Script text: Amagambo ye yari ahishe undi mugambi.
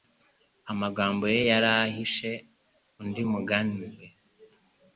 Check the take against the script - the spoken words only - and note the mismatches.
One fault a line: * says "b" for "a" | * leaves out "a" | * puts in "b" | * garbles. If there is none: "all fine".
all fine